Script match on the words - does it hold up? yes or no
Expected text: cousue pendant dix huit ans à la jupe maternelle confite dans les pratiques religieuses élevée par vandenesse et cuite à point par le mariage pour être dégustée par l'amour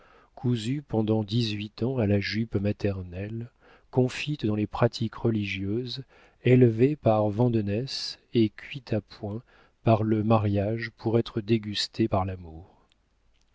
yes